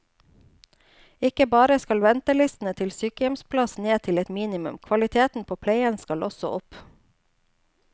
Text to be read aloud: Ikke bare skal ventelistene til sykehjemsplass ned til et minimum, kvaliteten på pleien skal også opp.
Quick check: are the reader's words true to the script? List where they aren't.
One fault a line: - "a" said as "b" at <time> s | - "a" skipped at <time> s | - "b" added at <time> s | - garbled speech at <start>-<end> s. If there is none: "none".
none